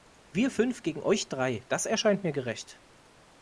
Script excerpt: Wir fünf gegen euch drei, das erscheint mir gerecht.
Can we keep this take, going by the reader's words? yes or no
yes